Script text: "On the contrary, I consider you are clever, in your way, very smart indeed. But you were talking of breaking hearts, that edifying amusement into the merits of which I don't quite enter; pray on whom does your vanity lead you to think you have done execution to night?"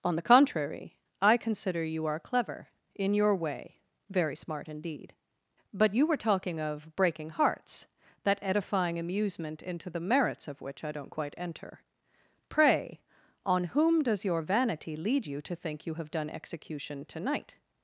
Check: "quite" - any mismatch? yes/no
no